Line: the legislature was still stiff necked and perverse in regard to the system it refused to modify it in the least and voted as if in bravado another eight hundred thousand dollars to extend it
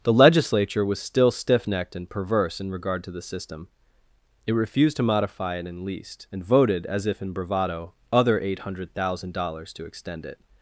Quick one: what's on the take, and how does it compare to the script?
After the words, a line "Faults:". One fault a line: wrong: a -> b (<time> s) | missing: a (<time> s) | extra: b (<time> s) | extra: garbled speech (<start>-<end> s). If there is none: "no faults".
the legislature was still stiff necked and perverse in regard to the system it refused to modify it in least and voted as if in bravado other eight hundred thousand dollars to extend it
Faults:
missing: the (5.8 s)
wrong: another -> other (8.1 s)